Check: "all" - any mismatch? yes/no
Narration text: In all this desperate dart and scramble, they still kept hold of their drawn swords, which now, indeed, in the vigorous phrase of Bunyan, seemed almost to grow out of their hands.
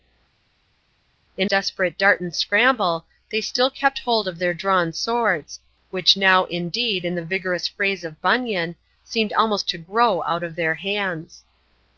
yes